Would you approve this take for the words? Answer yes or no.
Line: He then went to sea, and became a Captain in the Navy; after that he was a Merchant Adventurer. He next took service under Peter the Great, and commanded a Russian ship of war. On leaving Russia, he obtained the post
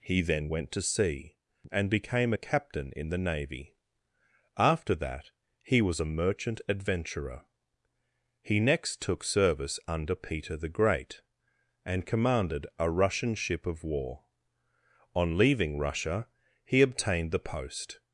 yes